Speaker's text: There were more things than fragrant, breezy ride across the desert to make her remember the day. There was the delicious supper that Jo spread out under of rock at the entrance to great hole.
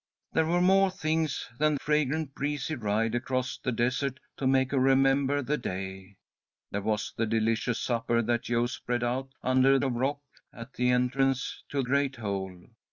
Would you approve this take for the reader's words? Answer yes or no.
yes